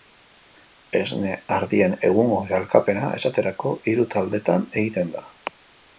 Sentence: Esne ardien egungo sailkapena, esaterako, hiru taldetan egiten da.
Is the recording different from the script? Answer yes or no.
no